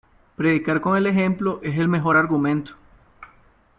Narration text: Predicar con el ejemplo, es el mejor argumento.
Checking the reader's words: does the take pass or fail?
pass